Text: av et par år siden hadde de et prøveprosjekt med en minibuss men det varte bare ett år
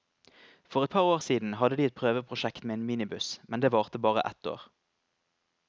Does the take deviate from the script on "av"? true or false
true